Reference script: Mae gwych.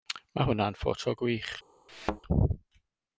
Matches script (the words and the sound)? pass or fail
fail